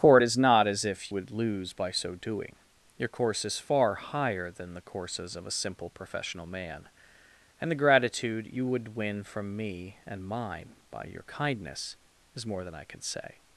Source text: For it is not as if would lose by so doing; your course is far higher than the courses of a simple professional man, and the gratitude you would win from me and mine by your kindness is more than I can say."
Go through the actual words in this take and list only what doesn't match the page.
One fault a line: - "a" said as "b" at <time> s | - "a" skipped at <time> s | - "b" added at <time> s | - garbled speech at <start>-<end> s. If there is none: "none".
none